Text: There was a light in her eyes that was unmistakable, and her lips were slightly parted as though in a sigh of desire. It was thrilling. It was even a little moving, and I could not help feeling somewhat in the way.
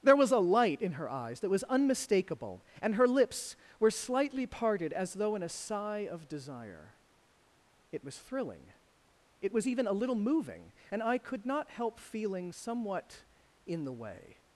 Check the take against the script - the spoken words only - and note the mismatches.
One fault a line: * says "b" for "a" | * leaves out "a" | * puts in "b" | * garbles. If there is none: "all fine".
all fine